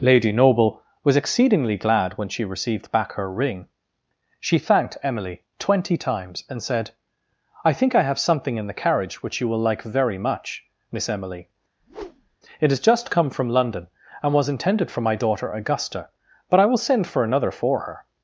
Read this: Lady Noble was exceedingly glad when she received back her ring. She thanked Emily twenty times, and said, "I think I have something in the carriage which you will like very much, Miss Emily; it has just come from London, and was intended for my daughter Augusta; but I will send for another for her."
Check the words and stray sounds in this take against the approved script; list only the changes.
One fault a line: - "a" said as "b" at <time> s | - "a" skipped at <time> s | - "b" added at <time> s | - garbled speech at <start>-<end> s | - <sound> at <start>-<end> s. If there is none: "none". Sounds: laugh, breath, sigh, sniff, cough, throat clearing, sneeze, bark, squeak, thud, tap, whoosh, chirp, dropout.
- whoosh at 11.8-12.4 s